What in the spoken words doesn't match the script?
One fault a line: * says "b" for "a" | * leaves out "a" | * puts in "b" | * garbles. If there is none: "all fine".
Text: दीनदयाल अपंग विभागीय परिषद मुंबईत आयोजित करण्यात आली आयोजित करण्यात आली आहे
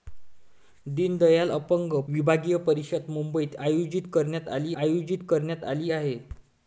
all fine